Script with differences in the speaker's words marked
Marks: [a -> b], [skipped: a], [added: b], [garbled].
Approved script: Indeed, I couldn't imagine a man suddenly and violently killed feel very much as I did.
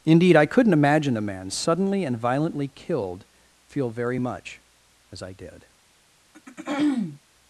Indeed, I couldn't imagine a man suddenly and violently killed feel very much as I did.